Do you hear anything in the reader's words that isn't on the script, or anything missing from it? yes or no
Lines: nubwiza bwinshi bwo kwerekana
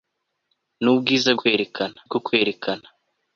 yes